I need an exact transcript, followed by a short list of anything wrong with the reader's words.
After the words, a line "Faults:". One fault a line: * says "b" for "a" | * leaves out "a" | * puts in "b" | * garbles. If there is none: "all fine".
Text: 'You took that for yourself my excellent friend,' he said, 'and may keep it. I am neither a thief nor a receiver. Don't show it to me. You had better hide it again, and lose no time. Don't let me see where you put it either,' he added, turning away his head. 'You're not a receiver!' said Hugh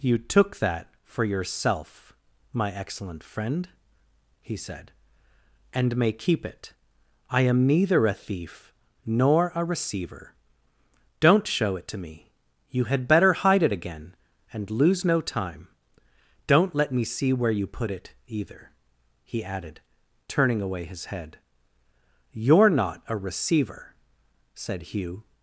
'You took that for yourself my excellent friend,' he said, 'and may keep it. I am neither a thief nor a receiver. Don't show it to me. You had better hide it again, and lose no time. Don't let me see where you put it either,' he added, turning away his head. 'You're not a receiver!' said Hugh
Faults:
all fine